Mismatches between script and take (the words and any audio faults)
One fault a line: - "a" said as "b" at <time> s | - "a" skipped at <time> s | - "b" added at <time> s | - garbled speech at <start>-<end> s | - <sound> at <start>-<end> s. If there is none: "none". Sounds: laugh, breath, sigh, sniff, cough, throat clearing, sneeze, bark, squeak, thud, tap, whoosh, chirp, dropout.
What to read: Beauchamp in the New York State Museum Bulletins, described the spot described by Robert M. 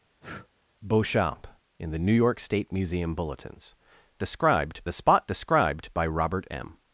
- breath at 0.2-0.5 s